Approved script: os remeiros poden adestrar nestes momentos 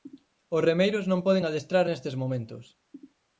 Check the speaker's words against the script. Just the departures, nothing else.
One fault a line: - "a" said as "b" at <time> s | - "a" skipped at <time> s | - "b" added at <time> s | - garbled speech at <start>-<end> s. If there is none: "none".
- "non" added at 1.1 s